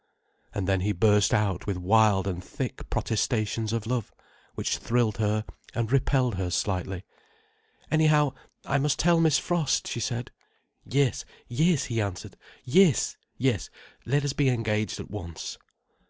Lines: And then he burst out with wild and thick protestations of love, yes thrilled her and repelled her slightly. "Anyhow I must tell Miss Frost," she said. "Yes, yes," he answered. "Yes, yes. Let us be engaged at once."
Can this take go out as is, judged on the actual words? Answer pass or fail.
fail